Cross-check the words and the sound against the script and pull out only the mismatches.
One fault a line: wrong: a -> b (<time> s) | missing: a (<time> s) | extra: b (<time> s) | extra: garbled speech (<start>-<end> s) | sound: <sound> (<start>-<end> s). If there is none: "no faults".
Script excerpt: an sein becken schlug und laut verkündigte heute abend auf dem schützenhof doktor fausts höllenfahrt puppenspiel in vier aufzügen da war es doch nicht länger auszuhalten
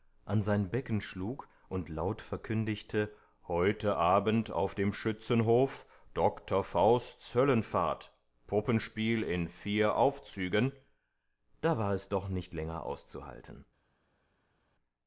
no faults